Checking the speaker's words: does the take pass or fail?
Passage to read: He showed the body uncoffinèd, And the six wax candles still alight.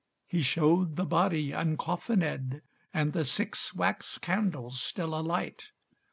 pass